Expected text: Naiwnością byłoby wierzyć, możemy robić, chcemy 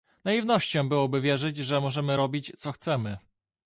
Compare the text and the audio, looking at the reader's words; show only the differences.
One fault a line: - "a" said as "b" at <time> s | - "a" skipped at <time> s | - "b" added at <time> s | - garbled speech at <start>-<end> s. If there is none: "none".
- "że" added at 1.6 s
- "co" added at 2.6 s